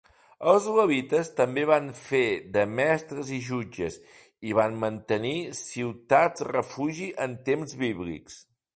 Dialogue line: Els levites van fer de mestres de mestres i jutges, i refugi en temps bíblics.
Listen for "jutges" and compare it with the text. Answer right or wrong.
wrong